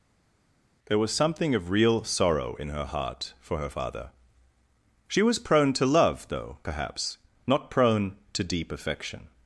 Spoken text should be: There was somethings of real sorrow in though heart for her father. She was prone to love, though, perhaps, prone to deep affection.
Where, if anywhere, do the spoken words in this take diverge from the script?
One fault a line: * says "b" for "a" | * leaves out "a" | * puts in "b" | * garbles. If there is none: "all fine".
* says "something" for "somethings"
* says "her" for "though"
* puts in "not"